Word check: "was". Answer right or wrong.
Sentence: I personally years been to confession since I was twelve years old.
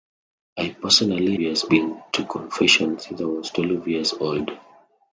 right